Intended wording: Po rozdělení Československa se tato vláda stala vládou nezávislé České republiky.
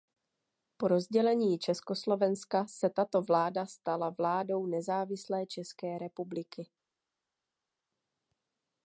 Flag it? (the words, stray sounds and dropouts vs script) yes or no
no